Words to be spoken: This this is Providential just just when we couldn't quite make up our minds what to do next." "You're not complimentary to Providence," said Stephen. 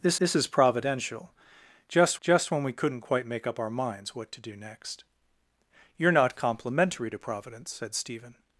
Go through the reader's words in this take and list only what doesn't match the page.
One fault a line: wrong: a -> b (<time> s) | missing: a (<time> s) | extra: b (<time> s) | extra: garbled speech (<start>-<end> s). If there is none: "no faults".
no faults